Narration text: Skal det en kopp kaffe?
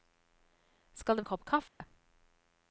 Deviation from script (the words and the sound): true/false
true